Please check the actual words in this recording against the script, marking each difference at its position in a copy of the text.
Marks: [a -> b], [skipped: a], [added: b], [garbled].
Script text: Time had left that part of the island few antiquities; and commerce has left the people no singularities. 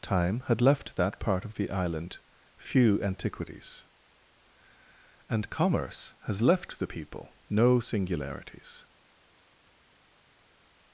Time had left that part of the island few antiquities; and commerce has left the people no singularities.